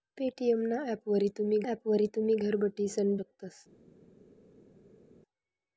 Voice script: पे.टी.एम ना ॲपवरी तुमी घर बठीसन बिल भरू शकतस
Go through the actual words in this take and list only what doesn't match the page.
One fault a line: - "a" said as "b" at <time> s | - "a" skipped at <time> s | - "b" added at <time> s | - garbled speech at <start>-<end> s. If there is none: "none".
- "ॲपवरी तुमी" added at 1.6 s
- "बिल भरू" skipped at 3.1 s